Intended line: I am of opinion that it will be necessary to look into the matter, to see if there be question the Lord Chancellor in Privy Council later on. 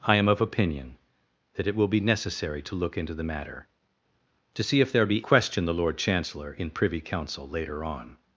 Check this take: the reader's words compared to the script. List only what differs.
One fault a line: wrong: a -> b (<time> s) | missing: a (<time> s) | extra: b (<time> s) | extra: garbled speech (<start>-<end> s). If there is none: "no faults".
no faults